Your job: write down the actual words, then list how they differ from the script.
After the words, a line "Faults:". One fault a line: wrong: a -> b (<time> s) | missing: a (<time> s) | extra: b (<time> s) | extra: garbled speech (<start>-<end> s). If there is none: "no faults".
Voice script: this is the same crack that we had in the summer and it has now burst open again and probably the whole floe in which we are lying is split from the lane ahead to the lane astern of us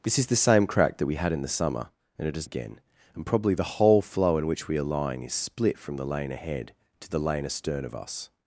this is the same crack that we had in the summer and it has again and probably the whole floe in which we are lying is split from the lane ahead to the lane astern of us
Faults:
missing: now burst open (2.5 s)